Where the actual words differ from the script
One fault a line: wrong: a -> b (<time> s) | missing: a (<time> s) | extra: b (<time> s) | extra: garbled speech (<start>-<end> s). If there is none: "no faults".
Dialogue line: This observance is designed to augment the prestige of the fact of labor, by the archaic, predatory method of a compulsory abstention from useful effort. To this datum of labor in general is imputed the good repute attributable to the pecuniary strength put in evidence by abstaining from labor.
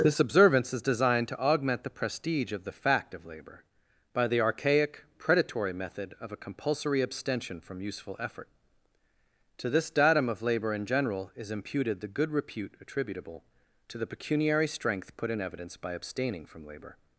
no faults